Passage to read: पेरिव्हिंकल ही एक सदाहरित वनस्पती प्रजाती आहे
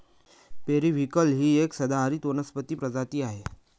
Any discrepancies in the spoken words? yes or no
no